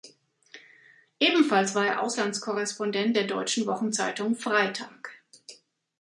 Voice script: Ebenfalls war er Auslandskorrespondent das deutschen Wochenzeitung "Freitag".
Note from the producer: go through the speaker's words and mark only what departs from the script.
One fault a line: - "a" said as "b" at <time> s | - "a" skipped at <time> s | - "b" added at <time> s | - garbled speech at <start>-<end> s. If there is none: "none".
- "das" said as "der" at 3.1 s